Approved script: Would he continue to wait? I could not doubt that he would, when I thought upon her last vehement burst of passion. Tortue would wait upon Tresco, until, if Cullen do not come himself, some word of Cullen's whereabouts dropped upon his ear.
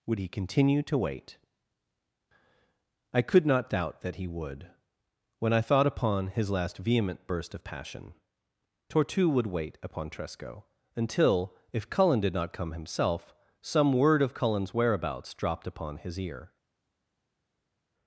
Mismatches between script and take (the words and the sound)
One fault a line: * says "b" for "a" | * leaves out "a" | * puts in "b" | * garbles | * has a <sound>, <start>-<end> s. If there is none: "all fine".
* says "his" for "her"
* says "did" for "do"